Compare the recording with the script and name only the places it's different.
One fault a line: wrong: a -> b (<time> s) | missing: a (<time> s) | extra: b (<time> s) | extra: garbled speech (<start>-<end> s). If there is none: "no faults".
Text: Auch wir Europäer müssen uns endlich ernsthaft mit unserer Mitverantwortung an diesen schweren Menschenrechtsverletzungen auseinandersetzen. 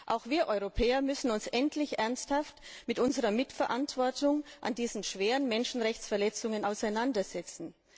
no faults